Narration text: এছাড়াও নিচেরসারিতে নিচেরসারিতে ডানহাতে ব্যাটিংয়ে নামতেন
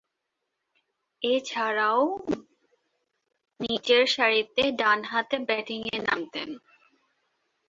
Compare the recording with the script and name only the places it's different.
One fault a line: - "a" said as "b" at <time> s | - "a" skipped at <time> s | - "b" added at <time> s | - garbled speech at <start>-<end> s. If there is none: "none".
- "নিচেরসারিতে" skipped at 4.6 s